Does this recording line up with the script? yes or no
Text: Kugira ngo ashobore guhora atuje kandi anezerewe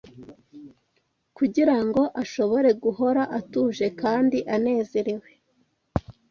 yes